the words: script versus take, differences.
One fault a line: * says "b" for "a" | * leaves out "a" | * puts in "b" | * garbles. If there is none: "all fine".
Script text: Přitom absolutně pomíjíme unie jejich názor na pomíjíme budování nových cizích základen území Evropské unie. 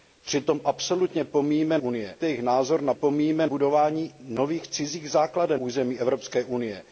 all fine